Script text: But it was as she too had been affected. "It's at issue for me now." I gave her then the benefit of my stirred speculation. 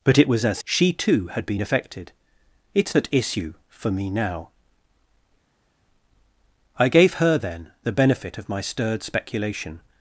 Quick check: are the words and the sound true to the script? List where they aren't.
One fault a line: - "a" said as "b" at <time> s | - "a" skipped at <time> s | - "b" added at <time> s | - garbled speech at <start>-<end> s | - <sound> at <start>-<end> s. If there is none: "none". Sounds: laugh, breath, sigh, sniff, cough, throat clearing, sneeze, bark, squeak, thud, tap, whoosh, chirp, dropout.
none